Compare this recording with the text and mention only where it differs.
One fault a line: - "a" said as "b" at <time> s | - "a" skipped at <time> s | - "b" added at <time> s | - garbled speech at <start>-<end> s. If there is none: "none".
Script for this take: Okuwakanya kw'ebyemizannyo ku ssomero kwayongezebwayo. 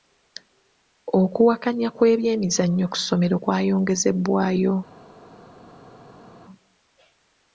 none